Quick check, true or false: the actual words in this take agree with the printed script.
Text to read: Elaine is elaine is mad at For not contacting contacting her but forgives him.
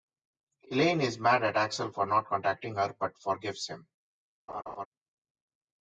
false